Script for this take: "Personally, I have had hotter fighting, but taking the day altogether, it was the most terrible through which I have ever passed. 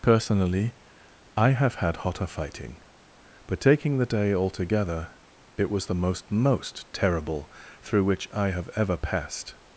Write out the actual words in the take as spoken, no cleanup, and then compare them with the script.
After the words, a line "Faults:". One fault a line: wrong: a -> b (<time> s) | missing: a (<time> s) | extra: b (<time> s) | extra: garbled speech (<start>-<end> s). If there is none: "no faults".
"Personally, I have had hotter fighting, but taking the day altogether, it was the most most terrible through which I have ever passed.
Faults:
extra: most (6.3 s)